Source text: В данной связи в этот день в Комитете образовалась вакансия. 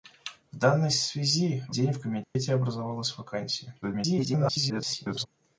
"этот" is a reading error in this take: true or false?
true